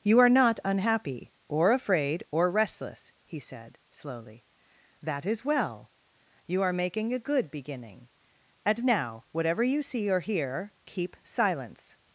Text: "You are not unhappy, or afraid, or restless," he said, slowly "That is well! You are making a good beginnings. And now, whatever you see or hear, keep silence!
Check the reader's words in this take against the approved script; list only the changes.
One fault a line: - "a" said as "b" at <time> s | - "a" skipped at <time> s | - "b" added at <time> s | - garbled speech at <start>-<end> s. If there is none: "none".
- "beginnings" said as "beginning" at 7.5 s